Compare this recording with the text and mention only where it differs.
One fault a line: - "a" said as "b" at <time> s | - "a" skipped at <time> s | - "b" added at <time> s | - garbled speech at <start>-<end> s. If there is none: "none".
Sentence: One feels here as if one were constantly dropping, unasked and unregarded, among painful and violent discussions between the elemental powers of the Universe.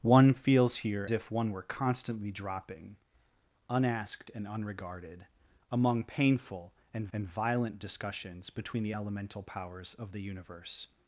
- "as" skipped at 1.1 s
- "and" added at 7.1 s